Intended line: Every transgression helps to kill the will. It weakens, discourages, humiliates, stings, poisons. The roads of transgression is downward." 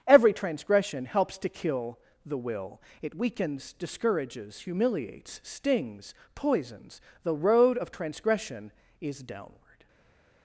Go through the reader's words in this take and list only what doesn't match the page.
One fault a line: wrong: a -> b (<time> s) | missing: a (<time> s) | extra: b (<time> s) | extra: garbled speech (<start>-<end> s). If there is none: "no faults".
wrong: roads -> road (7.3 s)